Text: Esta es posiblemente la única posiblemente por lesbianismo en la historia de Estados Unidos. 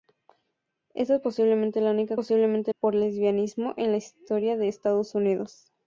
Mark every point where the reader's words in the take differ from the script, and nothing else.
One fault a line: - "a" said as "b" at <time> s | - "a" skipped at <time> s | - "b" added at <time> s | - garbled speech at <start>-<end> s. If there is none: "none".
none